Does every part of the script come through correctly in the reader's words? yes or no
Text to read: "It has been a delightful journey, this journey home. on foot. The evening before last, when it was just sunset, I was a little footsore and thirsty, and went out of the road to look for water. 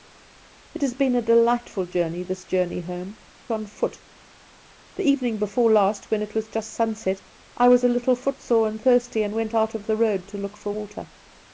yes